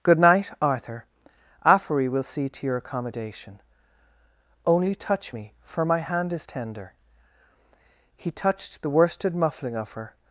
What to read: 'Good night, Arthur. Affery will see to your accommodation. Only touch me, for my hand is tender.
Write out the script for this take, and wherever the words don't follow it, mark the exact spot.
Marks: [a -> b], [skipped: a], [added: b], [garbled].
'Good night, Arthur. Affery will see to your accommodation. Only touch me, for my hand is tender. [added: He touched the worsted muffling of her]